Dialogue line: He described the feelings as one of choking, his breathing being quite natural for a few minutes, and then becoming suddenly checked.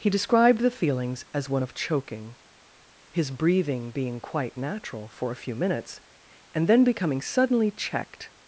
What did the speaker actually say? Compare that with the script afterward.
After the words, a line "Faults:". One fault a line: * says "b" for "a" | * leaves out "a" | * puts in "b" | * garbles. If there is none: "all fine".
He described the feelings as one of choking, his breathing being quite natural for a few minutes, and then becoming suddenly checked.
Faults:
all fine